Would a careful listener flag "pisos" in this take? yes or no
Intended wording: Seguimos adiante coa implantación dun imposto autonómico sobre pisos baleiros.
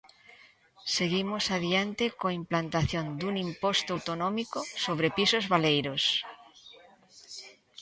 no